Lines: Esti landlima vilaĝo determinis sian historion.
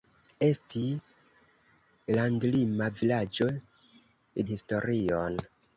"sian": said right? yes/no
no